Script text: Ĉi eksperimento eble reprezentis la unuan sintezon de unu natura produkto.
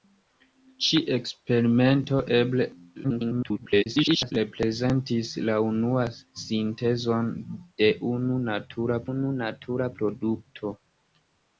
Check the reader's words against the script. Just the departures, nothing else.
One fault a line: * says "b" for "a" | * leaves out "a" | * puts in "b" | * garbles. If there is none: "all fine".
* garbles
* puts in "unu natura"